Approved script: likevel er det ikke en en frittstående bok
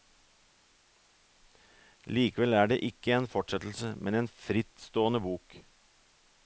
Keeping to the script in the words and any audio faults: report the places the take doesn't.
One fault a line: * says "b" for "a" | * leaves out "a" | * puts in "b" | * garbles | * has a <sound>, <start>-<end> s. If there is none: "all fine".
* puts in "fortsettelse men"